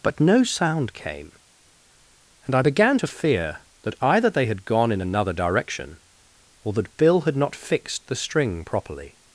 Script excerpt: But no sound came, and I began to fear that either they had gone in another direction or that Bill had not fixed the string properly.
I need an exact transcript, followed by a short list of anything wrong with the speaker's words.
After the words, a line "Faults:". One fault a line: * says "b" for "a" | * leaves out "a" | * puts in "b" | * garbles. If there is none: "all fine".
But no sound came, and I began to fear that either they had gone in another direction or that Bill had not fixed the string properly.
Faults:
all fine